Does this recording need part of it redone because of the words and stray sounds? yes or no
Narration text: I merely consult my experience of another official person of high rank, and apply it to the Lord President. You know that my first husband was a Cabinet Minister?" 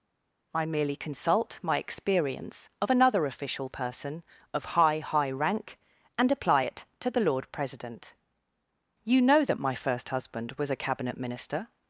yes